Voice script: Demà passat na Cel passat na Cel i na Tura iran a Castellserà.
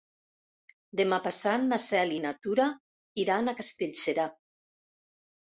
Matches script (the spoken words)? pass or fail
fail